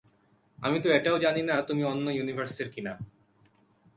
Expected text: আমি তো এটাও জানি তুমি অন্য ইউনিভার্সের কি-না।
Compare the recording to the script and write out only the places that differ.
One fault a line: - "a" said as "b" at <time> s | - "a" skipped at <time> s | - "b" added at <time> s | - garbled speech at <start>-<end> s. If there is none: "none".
- "না" added at 1.4 s